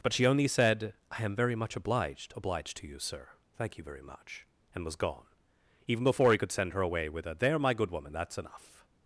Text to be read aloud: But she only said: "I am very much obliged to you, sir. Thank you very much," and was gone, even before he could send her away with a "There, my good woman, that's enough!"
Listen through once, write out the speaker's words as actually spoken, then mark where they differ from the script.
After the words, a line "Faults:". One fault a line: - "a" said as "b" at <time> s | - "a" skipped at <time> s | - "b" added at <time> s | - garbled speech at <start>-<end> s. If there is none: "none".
But she only said: "I am very much obliged obliged to you, sir. Thank you very much," and was gone, even before he could send her away with a "There, my good woman, that's enough!"
Faults:
- "obliged" added at 2.3 s